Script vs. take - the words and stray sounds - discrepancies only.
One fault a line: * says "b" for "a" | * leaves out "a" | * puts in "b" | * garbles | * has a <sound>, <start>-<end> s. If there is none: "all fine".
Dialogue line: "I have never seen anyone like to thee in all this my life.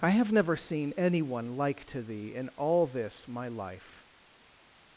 all fine